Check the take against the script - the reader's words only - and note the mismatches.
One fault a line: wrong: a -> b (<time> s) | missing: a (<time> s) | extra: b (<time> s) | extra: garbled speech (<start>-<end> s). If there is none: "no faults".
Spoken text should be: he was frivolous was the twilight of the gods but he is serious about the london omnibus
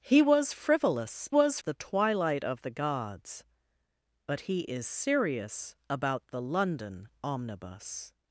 no faults